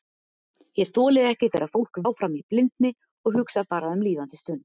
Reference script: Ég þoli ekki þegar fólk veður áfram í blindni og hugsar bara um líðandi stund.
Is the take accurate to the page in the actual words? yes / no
no